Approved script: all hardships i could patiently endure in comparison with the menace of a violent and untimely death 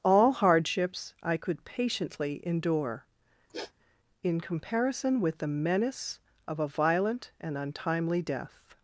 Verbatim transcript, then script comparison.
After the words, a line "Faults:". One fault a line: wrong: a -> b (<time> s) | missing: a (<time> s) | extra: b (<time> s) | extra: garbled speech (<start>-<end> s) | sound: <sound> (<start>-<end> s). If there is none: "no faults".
all hardships i could patiently endure in comparison with the menace of a violent and untimely death
Faults:
sound: sniff (3.5-3.7 s)